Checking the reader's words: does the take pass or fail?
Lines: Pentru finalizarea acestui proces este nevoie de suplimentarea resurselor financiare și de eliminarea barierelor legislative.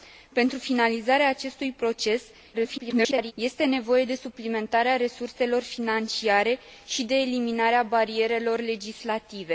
fail